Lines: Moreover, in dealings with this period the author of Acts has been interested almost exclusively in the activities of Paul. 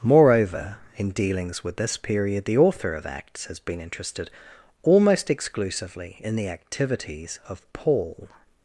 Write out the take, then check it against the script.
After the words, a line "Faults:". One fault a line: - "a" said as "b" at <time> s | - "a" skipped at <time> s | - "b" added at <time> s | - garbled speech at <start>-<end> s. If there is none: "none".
Moreover, in dealings with this period the author of Acts has been interested almost exclusively in the activities of Paul.
Faults:
none